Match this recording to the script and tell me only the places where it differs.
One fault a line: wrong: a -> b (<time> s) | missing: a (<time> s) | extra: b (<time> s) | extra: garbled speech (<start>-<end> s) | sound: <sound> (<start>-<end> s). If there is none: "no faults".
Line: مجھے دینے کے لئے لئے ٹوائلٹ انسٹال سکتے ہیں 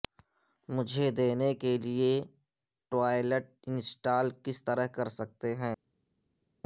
missing: لئے (2.1 s)
extra: کس طرح کر (4.4 s)